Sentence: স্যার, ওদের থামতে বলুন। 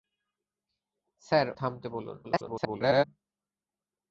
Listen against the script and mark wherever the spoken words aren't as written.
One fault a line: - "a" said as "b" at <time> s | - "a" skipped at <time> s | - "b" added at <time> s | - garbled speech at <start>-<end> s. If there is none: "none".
- "ওদের" skipped at 1.5 s
- garbled speech at 2.2-3.0 s